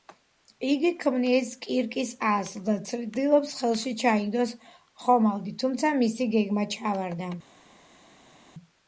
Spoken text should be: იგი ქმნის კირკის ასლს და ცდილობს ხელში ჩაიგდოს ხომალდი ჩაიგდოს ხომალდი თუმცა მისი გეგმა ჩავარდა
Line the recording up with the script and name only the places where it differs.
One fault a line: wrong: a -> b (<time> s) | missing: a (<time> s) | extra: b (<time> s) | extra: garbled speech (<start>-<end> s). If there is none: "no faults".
missing: ჩაიგდოს ხომალდი (5.6 s)